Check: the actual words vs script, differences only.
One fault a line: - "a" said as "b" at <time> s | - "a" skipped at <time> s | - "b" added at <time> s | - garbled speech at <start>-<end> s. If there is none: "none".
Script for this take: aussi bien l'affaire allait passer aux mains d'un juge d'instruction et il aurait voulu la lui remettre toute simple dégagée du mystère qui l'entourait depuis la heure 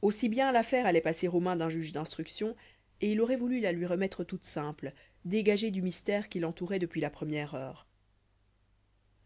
- "première" added at 7.1 s